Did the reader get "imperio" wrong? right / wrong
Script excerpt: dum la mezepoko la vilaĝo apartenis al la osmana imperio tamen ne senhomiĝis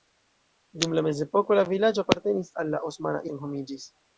wrong